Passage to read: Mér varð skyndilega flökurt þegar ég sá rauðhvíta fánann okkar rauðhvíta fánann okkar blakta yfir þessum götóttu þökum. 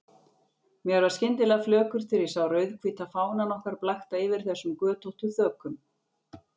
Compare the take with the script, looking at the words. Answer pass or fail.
fail